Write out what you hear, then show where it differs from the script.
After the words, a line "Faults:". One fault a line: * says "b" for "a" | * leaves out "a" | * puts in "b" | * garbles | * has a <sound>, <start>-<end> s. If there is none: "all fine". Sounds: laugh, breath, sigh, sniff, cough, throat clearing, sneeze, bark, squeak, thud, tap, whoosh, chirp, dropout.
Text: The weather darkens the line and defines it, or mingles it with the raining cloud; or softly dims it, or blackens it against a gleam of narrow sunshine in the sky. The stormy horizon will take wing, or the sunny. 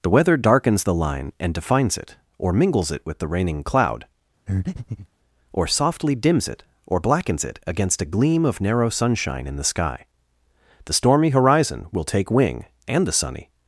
The weather darkens the line and defines it, or mingles it with the raining cloud; or softly dims it, or blackens it against a gleam of narrow sunshine in the sky. The stormy horizon will take wing, and the sunny.
Faults:
* has a breath, 4.5-5.1 s
* says "and" for "or"